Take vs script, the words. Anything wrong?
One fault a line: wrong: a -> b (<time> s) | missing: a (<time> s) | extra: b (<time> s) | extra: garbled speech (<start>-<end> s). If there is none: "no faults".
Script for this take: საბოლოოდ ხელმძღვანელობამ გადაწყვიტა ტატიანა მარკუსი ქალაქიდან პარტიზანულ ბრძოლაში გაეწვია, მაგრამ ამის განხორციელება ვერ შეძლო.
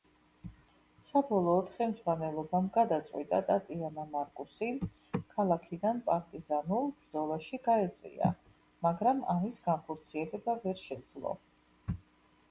no faults